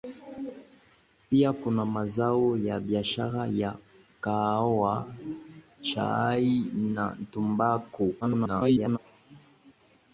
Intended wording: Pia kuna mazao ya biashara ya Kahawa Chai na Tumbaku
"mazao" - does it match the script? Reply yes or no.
yes